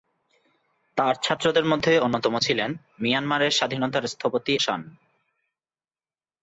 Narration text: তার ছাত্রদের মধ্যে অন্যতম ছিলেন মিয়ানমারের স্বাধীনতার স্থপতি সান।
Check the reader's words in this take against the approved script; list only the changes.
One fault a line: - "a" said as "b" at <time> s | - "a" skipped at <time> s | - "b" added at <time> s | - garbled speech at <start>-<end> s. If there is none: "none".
none